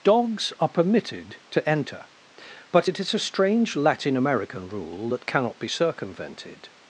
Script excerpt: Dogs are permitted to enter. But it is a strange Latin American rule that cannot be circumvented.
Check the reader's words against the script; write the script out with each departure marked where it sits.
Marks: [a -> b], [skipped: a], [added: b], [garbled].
Dogs are permitted to enter. But it is a strange Latin American rule that cannot be circumvented.